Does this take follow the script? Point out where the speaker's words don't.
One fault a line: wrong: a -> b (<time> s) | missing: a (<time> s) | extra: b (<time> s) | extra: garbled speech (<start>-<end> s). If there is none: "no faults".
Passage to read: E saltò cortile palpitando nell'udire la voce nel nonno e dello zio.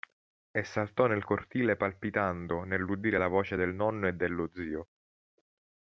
extra: nel (1.1 s)
wrong: nel -> del (3.6 s)